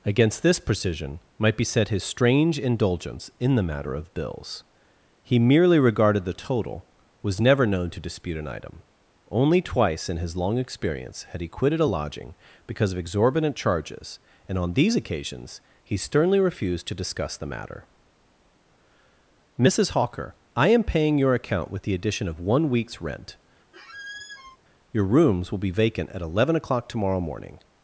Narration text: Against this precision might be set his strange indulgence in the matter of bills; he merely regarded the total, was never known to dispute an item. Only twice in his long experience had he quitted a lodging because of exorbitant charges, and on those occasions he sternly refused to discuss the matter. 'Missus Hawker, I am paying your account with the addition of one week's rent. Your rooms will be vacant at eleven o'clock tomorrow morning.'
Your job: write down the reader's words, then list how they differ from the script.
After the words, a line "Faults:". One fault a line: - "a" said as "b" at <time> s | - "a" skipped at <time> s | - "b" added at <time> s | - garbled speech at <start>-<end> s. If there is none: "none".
Against this precision might be set his strange indulgence in the matter of bills; he merely regarded the total, was never known to dispute an item. Only twice in his long experience had he quitted a lodging because of exorbitant charges, and on these occasions he sternly refused to discuss the matter. 'Missus Hawker, I am paying your account with the addition of one week's rent. Your rooms will be vacant at eleven o'clock tomorrow morning.'
Faults:
- "those" said as "these" at 14.7 s